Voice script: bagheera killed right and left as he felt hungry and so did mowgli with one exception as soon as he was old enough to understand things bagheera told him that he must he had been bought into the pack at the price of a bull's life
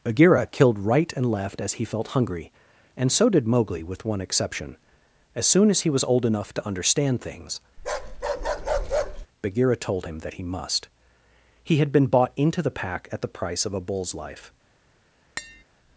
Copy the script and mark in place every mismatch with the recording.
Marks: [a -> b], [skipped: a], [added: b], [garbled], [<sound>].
bagheera killed right and left as he felt hungry and so did mowgli with one exception as soon as he was old enough to understand things [bark] bagheera told him that he must he had been bought into the pack at the price of a bull's life [tap]